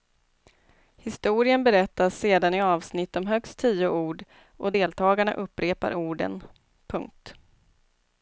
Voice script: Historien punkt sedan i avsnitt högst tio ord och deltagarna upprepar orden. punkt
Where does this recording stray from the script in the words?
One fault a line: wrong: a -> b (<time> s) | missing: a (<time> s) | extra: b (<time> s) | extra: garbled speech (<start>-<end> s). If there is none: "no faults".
wrong: punkt -> berättas (1.6 s)
extra: om (3.1 s)